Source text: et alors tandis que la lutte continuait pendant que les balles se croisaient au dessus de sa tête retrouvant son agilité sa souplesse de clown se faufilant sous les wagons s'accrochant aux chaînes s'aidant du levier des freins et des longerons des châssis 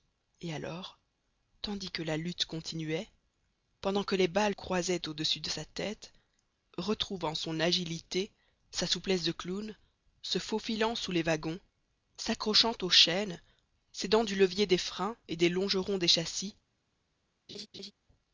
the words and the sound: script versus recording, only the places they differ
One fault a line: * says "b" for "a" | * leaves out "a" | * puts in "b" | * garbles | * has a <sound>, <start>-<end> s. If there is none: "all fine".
* leaves out "se"
* has a laugh, 17.5-17.9 s